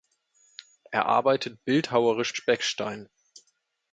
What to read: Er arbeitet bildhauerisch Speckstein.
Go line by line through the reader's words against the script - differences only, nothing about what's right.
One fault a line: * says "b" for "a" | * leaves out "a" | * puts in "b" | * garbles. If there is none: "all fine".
all fine